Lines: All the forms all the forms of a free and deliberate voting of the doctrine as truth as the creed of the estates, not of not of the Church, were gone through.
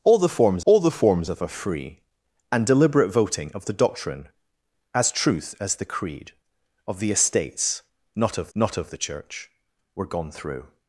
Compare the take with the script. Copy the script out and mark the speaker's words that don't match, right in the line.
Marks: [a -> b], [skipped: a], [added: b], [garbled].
All the forms all the forms of a free and deliberate voting of the doctrine as truth as the creed of the estates, not of not of the Church, were gone through.